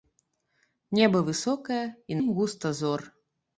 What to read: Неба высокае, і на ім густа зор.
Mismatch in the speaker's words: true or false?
true